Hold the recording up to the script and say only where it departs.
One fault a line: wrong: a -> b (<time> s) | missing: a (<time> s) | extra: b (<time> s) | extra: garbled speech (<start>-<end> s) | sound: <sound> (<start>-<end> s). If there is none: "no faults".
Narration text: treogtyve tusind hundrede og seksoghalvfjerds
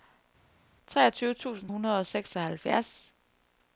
no faults